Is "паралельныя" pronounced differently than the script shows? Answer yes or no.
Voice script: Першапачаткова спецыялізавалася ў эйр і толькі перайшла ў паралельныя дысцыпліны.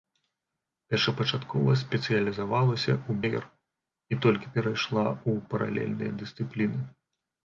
no